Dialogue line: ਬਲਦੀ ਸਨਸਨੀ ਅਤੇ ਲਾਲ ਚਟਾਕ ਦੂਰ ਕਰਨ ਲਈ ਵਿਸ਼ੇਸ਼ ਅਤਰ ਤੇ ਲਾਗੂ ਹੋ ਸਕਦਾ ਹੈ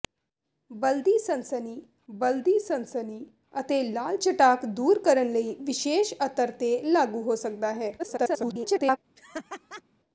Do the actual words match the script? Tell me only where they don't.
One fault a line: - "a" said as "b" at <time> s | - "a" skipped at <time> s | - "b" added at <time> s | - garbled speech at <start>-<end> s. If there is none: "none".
- "ਬਲਦੀ ਸਨਸਨੀ" added at 2.1 s
- garbled speech at 8.0-9.0 s